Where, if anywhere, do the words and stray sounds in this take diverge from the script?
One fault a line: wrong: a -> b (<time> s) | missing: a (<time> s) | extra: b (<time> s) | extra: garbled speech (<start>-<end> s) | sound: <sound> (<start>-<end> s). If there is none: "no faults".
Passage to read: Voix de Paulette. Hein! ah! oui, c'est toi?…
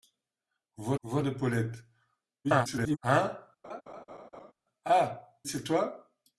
extra: voix (1.0 s)
extra: garbled speech (2.4-3.0 s)
sound: laugh (3.6-4.5 s)
missing: oui (5.4 s)